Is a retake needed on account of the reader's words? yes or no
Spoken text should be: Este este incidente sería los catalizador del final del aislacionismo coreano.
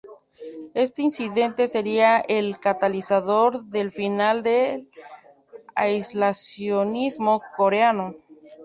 yes